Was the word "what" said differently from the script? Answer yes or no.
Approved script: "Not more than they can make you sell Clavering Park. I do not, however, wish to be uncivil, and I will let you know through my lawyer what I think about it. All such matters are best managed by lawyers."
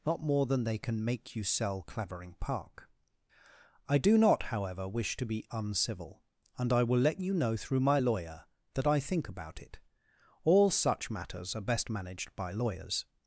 yes